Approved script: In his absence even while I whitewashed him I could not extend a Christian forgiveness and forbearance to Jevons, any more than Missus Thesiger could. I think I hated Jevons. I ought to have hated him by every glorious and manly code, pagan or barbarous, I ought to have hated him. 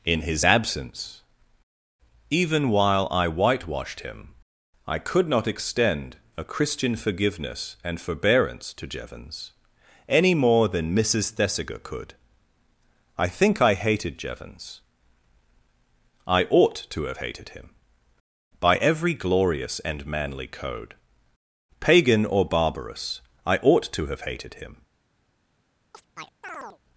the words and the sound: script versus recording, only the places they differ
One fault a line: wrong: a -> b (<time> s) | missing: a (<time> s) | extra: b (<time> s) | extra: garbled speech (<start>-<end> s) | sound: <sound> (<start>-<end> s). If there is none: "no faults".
sound: chirp (25.9-26.8 s)